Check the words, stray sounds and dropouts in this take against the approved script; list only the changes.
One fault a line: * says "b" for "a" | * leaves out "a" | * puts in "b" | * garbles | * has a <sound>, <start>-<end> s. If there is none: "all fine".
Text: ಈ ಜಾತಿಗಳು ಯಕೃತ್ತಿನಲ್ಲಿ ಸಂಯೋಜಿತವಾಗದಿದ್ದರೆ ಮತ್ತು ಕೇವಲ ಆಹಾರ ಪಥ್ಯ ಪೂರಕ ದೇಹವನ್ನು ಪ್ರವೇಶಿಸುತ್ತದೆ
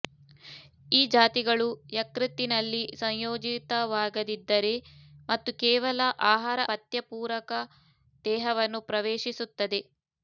all fine